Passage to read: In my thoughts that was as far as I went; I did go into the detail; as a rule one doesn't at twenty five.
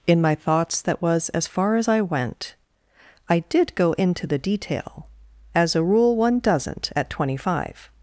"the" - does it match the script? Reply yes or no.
yes